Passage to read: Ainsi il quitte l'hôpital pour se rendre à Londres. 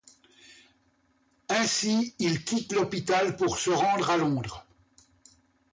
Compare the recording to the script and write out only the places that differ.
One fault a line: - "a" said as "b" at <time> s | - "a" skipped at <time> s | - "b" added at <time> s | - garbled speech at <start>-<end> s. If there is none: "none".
none